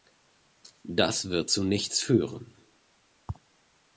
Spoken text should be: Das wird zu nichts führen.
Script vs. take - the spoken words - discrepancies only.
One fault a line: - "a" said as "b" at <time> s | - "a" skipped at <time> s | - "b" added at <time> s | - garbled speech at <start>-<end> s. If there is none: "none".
none